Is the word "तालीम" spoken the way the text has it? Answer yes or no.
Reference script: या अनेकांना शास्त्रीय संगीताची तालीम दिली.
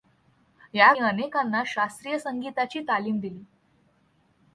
yes